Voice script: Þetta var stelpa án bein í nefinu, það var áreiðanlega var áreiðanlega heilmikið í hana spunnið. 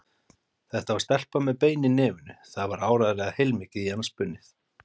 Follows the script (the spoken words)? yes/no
no